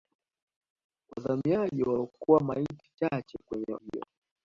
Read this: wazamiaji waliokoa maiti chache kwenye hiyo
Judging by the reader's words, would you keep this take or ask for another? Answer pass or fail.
pass